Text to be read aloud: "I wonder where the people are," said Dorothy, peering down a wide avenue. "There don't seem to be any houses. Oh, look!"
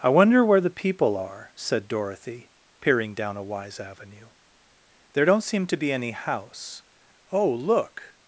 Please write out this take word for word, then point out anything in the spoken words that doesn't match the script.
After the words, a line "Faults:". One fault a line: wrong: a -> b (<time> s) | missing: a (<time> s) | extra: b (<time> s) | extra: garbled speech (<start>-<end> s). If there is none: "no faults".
"I wonder where the people are," said Dorothy, peering down a wise avenue. "There don't seem to be any house. Oh, look!"
Faults:
wrong: wide -> wise (3.4 s)
wrong: houses -> house (6.1 s)